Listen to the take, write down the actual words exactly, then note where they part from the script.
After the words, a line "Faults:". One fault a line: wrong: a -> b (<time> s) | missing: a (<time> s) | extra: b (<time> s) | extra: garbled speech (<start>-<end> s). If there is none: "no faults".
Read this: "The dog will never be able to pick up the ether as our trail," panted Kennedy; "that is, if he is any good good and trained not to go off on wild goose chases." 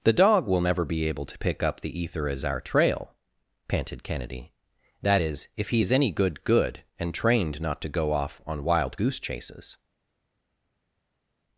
"The dog will never be able to pick up the ether as our trail," panted Kennedy; "that is, if he is any good good and trained not to go off on wild goose chases."
Faults:
no faults